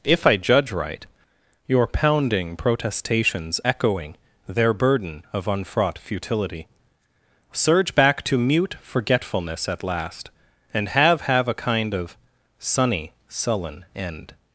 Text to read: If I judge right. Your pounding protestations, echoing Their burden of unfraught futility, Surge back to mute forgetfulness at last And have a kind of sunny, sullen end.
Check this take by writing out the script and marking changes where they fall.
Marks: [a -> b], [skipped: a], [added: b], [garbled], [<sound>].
If I judge right. Your pounding protestations, echoing Their burden of unfraught futility, Surge back to mute forgetfulness at last And have [added: have] a kind of sunny, sullen end.